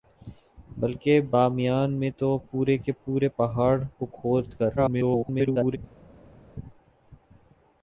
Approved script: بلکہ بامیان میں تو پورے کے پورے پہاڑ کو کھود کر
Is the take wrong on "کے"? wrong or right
right